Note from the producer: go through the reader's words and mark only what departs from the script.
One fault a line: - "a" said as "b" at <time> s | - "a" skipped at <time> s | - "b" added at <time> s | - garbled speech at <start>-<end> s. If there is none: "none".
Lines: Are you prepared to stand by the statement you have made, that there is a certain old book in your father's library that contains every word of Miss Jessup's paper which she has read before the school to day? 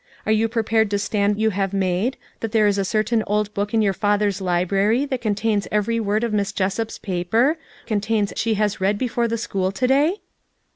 - "by the statement" skipped at 1.4 s
- "which" said as "contains" at 7.8 s